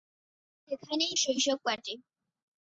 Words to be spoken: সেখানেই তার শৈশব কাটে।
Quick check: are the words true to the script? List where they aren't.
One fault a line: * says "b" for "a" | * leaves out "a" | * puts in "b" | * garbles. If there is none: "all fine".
* leaves out "তার"